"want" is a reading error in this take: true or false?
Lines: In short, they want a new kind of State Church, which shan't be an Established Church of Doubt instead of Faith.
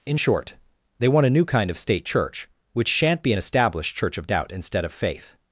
false